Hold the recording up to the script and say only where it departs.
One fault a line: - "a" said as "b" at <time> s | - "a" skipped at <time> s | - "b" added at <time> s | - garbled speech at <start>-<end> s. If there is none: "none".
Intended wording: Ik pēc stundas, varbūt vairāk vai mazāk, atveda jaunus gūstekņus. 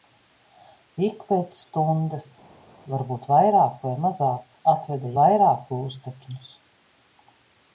- "jaunus" said as "vairāk" at 5.2 s